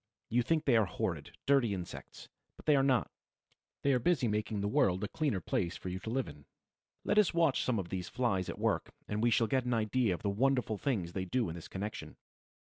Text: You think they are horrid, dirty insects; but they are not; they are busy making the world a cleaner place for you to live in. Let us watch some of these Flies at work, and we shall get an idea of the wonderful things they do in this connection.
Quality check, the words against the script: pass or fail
pass